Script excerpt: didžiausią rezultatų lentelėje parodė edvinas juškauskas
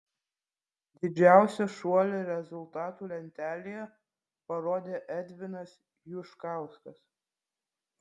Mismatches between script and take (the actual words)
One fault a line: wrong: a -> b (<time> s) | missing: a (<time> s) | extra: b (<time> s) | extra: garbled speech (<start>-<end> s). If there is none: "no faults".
extra: šuolį (1.7 s)